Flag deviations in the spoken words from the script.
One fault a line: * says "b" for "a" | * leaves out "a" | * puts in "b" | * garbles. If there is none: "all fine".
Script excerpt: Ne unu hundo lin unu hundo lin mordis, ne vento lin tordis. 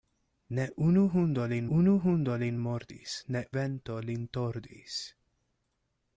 all fine